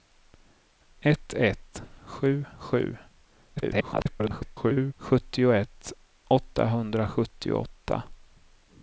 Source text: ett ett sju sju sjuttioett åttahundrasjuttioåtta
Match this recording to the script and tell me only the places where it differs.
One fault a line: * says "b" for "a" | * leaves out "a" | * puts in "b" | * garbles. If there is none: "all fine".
* garbles